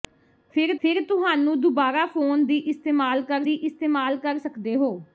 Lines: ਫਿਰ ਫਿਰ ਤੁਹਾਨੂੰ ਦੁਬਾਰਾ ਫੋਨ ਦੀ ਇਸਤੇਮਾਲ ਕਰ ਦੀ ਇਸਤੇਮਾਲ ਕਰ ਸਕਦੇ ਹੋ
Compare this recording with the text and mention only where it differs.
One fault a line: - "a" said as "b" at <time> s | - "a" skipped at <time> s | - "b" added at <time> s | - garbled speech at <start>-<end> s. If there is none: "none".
none